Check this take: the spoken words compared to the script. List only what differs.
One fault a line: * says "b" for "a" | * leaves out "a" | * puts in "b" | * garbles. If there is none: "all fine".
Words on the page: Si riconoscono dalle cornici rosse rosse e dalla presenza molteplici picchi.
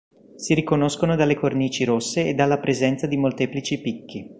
* leaves out "rosse"
* puts in "di"